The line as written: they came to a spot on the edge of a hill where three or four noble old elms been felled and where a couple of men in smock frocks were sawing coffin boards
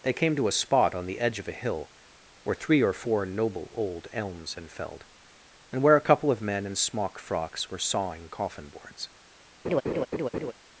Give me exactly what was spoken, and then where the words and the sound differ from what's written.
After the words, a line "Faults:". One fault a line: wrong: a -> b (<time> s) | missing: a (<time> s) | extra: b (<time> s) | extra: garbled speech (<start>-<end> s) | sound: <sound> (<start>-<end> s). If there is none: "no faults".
they came to a spot on the edge of a hill where three or four noble old elms been felled and where a couple of men in smock frocks were sawing coffin boards
Faults:
sound: laugh (9.6-10.5 s)